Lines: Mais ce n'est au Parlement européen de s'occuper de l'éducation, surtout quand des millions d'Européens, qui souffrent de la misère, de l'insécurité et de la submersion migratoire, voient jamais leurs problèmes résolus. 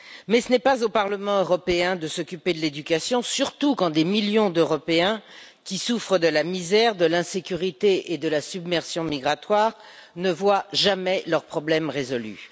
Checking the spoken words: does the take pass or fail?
fail